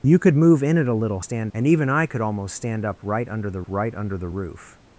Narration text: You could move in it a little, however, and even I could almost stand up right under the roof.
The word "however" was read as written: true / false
false